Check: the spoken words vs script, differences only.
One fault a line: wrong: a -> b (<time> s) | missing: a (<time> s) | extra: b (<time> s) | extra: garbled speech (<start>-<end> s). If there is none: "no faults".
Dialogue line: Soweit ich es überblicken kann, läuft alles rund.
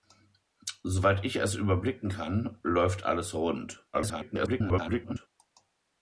extra: garbled speech (3.9-5.3 s)